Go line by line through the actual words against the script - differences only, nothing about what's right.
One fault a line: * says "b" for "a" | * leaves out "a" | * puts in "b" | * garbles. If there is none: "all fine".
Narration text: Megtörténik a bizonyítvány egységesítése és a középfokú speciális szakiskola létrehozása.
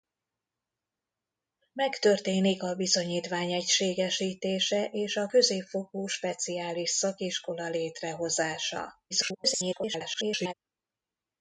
* garbles